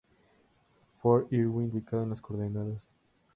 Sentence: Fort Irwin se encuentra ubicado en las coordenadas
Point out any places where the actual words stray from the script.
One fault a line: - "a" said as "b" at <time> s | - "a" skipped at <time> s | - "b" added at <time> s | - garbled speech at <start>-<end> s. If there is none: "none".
- "se encuentra" skipped at 1.7 s